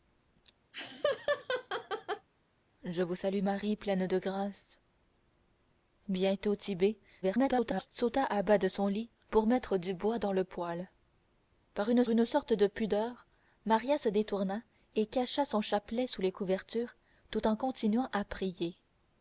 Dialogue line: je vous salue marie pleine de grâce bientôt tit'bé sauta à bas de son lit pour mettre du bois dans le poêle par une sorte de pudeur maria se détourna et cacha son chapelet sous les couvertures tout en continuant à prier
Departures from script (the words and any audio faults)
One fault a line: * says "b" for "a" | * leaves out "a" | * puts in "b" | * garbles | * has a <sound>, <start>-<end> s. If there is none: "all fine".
* has a laugh, 0.7-2.3 s
* garbles
* puts in "une"